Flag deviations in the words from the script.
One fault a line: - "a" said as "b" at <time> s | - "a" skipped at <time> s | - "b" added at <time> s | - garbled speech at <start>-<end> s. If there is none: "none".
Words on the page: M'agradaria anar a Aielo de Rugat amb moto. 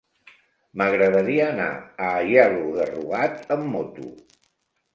none